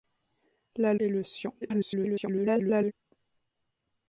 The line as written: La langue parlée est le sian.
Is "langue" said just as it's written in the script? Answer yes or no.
no